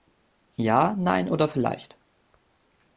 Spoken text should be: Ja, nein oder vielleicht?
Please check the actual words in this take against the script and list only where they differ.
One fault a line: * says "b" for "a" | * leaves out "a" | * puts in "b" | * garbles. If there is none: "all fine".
all fine